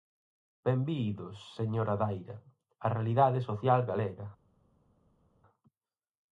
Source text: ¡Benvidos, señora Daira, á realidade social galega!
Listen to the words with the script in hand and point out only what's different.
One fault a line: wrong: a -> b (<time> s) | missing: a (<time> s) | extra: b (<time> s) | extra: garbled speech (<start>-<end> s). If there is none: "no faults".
no faults